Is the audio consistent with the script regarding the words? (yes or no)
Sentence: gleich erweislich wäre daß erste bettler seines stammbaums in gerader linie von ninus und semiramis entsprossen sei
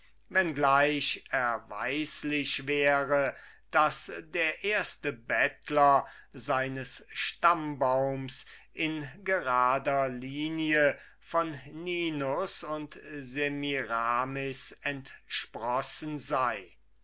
no